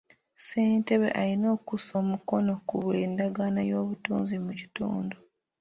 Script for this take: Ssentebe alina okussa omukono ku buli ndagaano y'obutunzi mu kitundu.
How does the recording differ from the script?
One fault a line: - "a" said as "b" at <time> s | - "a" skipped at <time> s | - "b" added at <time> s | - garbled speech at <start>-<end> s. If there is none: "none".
none